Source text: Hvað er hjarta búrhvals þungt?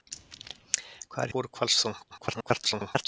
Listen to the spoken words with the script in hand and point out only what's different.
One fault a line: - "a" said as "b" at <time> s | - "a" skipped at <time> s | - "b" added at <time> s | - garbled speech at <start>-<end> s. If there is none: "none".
- "hjarta" skipped at 1.3 s
- garbled speech at 2.1-3.1 s